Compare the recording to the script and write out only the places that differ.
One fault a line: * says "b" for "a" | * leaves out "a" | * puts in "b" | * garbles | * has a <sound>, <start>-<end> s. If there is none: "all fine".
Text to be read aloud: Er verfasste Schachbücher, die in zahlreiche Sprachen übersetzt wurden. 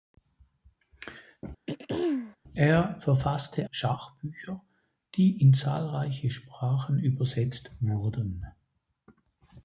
* has a throat clearing, 1.7-2.4 s